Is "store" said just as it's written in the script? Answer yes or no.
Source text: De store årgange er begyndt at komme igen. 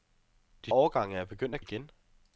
no